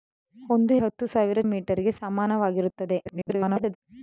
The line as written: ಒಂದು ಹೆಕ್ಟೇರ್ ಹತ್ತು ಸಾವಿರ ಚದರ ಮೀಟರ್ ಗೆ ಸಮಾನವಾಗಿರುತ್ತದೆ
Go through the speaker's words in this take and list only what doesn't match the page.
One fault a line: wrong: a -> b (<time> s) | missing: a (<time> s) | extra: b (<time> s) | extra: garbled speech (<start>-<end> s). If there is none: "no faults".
missing: ಹೆಕ್ಟೇರ್ (0.7 s)
missing: ಚದರ (1.4 s)
extra: garbled speech (3.1-3.8 s)